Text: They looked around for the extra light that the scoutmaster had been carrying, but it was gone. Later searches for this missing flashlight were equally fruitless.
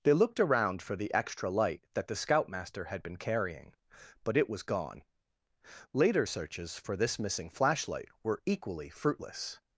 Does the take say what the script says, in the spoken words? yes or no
yes